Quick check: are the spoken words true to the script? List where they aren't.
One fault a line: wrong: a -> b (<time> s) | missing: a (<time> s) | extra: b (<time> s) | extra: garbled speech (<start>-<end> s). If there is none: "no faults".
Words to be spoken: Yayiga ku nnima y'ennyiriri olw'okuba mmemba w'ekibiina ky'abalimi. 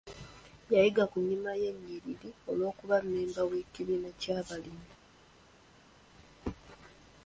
no faults